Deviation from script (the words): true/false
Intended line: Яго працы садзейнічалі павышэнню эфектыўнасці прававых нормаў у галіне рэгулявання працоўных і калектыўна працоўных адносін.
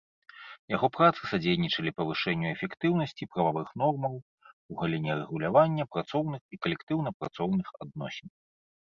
false